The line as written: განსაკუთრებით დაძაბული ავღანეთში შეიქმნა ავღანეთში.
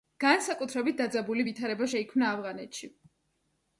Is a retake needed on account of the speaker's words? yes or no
yes